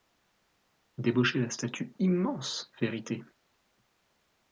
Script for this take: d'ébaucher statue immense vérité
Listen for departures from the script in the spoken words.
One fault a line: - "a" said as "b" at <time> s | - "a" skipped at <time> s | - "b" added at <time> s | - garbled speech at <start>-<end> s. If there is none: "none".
- "la" added at 1.4 s